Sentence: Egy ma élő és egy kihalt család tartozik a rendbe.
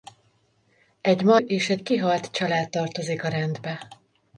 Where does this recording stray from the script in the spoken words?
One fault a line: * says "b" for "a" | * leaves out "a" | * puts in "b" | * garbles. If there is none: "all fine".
* leaves out "élő"